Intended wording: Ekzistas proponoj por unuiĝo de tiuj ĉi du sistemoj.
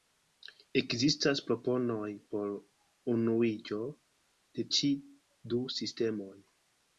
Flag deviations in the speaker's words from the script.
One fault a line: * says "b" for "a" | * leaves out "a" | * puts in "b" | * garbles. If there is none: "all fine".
* leaves out "tiuj"